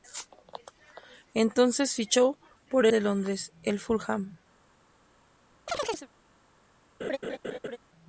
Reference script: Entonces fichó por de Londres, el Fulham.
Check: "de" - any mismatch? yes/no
no